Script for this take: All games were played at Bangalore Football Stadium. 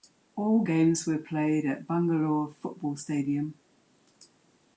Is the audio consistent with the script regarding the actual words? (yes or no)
yes